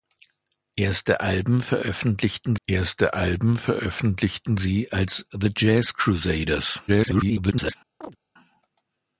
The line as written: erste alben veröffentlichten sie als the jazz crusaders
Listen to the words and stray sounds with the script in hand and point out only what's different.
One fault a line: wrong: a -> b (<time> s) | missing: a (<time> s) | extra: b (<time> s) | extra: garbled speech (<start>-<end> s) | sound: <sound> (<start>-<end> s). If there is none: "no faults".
extra: erste alben veröffentlichten (2.7 s)
extra: garbled speech (6.9-7.8 s)
sound: chirp (8.0-8.2 s)